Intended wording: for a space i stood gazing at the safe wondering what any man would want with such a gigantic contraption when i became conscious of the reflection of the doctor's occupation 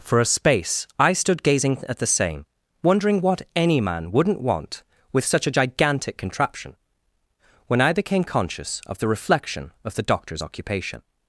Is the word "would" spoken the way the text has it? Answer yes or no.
no